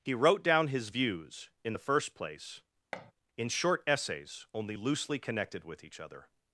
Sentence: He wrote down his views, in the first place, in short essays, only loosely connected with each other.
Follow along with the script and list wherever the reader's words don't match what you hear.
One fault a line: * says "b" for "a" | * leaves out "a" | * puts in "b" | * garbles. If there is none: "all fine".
all fine